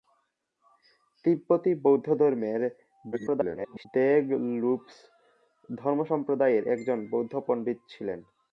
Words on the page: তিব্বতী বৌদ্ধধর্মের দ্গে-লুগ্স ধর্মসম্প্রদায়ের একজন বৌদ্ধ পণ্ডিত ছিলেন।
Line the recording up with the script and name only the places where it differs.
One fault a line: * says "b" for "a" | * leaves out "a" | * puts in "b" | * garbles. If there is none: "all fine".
* garbles